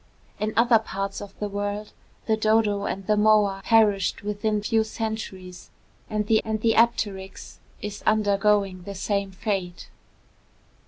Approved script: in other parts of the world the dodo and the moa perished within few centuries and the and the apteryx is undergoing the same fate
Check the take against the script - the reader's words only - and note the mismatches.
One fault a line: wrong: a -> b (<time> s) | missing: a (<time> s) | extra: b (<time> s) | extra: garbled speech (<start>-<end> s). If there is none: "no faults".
no faults